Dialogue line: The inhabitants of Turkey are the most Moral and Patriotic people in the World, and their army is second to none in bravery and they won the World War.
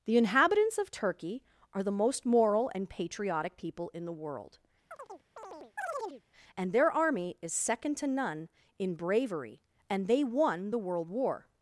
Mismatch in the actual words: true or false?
false